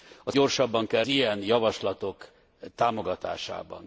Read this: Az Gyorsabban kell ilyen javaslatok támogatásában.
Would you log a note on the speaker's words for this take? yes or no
no